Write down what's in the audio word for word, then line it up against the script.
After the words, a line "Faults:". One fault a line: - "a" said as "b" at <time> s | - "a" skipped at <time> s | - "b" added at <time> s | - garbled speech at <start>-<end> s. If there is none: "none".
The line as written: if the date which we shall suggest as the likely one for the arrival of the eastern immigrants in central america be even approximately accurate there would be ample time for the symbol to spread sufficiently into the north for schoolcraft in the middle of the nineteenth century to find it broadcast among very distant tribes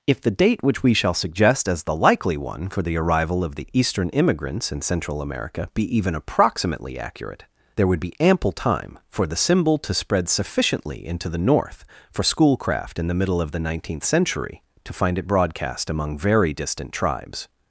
if the date which we shall suggest as the likely one for the arrival of the eastern immigrants in central america be even approximately accurate there would be ample time for the symbol to spread sufficiently into the north for schoolcraft in the middle of the nineteenth century to find it broadcast among very distant tribes
Faults:
none